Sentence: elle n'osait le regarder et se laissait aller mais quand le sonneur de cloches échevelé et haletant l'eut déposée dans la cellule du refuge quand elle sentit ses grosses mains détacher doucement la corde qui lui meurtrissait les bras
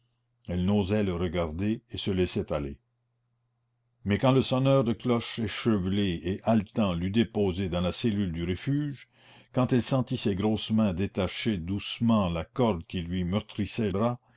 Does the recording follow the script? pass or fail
fail